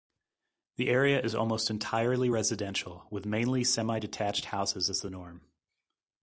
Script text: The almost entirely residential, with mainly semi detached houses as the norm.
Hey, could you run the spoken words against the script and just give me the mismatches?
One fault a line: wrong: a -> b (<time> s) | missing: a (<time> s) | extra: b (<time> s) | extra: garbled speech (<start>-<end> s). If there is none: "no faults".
extra: area is (0.9 s)